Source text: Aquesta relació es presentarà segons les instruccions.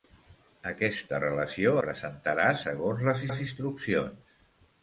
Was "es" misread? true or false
true